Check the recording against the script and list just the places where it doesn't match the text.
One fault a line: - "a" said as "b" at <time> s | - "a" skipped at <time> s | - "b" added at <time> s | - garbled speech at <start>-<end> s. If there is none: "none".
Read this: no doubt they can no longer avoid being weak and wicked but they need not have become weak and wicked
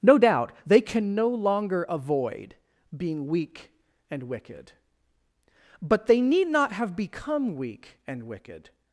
none